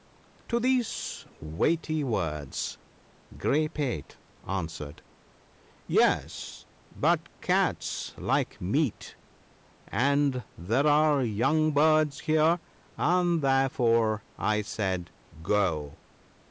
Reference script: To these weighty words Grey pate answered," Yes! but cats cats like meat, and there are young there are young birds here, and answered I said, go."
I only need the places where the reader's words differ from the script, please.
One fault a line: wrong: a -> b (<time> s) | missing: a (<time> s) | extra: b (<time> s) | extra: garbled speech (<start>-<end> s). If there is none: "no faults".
missing: cats (8.1 s)
missing: there are young (11.7 s)
wrong: answered -> therefore (13.4 s)